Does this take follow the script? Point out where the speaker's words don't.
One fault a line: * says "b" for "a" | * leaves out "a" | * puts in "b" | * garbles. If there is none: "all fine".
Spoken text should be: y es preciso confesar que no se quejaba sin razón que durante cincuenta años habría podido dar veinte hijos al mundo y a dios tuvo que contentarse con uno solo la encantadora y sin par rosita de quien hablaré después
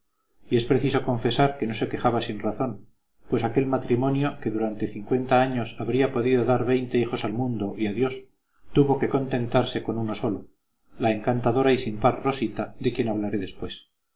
* puts in "pues aquel matrimonio"